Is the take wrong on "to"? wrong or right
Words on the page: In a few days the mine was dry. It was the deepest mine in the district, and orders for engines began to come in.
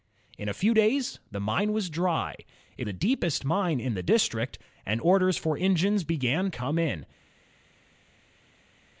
wrong